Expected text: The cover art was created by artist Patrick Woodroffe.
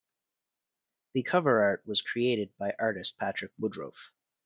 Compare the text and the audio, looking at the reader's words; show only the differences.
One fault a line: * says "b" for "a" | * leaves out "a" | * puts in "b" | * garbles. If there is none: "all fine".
all fine